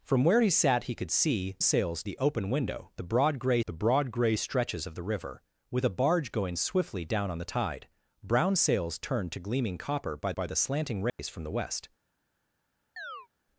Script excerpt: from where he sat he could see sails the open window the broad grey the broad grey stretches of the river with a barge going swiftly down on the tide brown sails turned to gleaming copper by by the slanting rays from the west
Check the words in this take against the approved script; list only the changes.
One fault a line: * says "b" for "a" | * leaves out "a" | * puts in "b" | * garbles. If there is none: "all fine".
all fine